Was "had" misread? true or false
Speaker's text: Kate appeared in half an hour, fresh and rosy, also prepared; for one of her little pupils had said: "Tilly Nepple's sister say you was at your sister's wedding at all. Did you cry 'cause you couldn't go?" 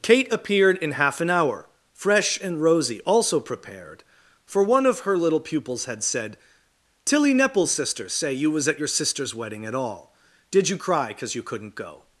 false